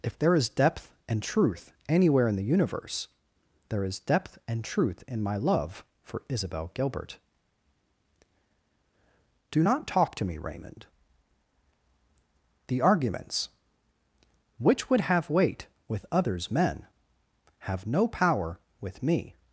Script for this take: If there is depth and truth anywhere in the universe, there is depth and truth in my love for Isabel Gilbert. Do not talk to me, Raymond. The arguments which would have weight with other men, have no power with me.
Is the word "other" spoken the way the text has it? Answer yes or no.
no